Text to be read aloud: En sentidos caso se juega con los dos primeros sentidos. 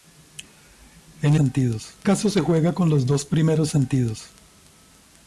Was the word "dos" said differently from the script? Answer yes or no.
no